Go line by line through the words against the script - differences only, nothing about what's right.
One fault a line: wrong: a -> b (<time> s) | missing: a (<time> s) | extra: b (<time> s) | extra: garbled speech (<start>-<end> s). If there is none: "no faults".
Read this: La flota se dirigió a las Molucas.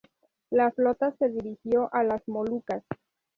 no faults